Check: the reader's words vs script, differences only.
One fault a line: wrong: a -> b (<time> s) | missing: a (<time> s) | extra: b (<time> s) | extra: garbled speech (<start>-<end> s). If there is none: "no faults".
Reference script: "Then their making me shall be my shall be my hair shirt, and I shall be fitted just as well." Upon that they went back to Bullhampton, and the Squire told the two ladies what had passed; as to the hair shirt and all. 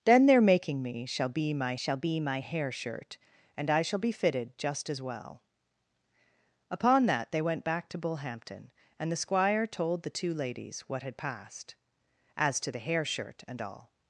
no faults